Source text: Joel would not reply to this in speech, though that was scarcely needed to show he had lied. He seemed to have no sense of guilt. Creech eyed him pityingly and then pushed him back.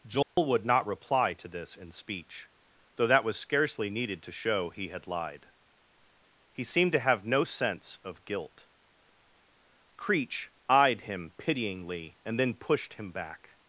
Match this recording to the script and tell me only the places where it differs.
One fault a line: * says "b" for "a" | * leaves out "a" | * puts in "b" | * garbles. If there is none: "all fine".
all fine